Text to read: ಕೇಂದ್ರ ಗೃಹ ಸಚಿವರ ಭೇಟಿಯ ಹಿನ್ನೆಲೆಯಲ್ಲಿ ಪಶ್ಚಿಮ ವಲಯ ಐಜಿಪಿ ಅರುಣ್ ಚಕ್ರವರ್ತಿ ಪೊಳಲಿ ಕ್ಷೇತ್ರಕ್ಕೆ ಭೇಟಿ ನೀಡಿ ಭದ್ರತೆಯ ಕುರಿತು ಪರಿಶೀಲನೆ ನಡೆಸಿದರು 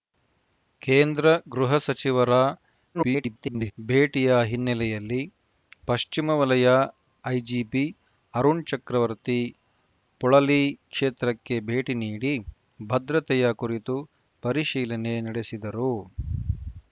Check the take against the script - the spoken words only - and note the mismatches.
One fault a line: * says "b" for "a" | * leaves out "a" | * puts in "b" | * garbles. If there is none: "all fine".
* garbles